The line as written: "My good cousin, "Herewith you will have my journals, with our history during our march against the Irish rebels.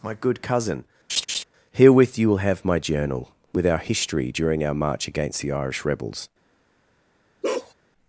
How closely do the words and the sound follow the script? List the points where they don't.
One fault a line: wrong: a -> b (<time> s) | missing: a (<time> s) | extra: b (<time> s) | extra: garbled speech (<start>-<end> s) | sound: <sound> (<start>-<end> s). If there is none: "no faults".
sound: laugh (1.1-1.4 s)
wrong: journals -> journal (2.8 s)
sound: bark (7.4-7.7 s)